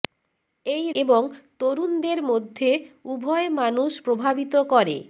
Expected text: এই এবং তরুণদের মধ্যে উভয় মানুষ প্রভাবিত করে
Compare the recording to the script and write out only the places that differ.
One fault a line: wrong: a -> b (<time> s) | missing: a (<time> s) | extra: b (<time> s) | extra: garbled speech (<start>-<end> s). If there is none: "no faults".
no faults